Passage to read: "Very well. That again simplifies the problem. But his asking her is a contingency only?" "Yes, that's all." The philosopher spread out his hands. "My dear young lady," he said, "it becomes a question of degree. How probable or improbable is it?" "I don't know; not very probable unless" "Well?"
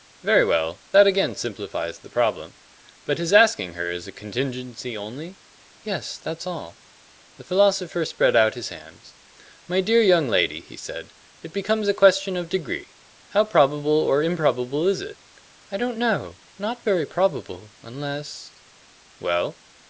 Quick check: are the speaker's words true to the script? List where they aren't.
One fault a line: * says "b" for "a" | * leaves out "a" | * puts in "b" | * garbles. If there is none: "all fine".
all fine